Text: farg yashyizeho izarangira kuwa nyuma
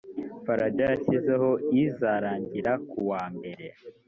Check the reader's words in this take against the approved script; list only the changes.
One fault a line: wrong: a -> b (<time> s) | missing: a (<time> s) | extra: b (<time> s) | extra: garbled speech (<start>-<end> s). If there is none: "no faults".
wrong: nyuma -> mbere (3.4 s)